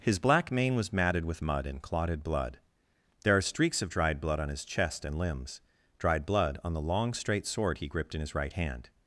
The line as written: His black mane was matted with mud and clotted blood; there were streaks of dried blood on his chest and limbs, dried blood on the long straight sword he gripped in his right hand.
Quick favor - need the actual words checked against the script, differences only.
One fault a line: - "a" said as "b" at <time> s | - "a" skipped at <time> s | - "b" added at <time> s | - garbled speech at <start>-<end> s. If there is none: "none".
- "were" said as "are" at 3.4 s